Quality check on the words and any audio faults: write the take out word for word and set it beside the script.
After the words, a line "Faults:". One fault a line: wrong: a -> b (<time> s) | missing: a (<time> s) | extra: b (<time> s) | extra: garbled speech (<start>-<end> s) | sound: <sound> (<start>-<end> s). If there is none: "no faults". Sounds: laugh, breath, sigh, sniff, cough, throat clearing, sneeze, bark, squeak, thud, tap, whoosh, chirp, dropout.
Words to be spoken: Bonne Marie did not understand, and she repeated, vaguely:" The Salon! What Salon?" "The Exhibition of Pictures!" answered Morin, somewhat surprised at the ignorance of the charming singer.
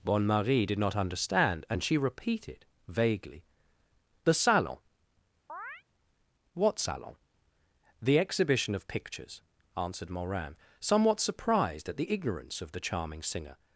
Bonne Marie did not understand, and she repeated, vaguely:" The Salon! What Salon?" "The Exhibition of Pictures!" answered Morin, somewhat surprised at the ignorance of the charming singer.
Faults:
sound: chirp (5.5-5.8 s)